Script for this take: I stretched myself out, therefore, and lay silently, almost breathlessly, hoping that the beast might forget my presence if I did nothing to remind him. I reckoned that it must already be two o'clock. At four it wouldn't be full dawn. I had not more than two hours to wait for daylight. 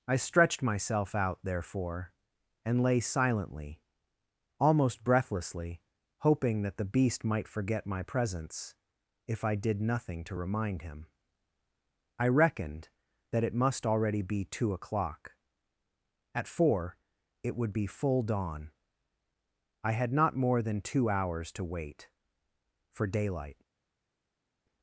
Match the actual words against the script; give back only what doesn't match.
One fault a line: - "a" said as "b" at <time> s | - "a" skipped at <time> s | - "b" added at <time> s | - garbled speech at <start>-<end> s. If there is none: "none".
- "wouldn't" said as "would" at 17.6 s